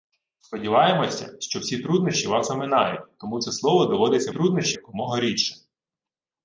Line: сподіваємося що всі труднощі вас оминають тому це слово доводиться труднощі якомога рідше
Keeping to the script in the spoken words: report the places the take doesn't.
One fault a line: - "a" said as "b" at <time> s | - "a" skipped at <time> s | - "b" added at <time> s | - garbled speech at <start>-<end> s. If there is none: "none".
none